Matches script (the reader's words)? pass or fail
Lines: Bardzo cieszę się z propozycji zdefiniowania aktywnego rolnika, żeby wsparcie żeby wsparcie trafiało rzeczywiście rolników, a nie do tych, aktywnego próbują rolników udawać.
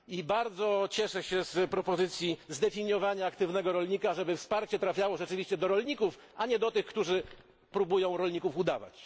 fail